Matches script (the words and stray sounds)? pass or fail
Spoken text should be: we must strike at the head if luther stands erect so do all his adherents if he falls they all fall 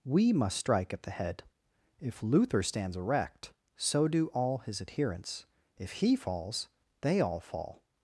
pass